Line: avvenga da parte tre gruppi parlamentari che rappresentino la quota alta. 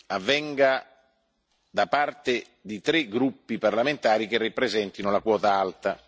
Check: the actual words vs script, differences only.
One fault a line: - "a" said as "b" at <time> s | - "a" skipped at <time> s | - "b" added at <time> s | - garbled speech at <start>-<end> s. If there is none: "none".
- "di" added at 2.6 s